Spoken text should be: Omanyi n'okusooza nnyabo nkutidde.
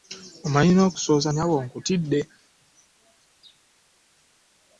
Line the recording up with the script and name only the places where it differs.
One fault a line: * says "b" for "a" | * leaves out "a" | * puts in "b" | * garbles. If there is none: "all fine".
all fine